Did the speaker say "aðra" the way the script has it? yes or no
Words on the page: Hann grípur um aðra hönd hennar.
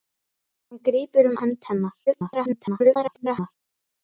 no